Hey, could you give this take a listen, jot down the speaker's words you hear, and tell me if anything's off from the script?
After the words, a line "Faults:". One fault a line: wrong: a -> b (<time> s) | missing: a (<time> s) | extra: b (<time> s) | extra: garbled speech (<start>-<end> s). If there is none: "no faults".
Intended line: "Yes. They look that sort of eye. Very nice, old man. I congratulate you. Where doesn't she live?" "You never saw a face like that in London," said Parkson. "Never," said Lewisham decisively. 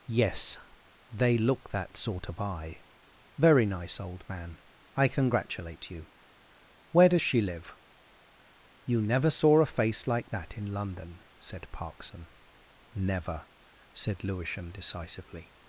"Yes. They look that sort of eye. Very nice, old man. I congratulate you. Where does she live?" "You never saw a face like that in London," said Parkson. "Never," said Lewisham decisively.
Faults:
wrong: doesn't -> does (7.1 s)